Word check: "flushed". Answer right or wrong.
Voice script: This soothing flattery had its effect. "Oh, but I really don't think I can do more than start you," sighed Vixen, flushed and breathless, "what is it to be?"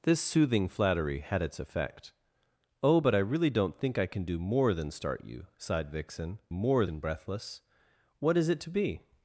wrong